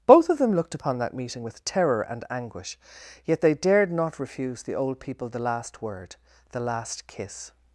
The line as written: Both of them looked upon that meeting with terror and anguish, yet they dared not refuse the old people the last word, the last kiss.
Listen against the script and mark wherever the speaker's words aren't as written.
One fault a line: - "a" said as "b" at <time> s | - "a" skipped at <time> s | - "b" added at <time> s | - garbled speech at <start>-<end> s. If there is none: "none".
none